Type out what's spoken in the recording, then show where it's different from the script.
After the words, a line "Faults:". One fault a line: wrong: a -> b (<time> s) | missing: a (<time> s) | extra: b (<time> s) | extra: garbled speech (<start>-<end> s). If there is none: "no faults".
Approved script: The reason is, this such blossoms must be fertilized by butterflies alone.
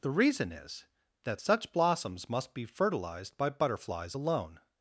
The reason is, that such blossoms must be fertilized by butterflies alone.
Faults:
wrong: this -> that (1.2 s)